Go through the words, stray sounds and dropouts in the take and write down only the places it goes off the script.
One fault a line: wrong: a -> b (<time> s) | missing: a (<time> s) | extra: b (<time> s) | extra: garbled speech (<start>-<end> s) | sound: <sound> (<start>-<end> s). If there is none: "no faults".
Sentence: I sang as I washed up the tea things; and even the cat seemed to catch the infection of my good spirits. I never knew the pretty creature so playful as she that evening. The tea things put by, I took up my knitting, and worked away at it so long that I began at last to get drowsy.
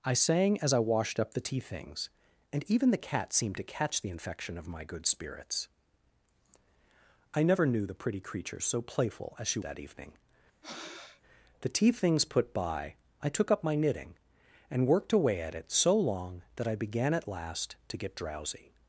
sound: breath (10.6-11.2 s)